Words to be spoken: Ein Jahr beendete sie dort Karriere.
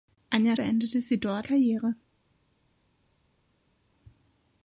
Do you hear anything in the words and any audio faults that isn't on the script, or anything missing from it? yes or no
no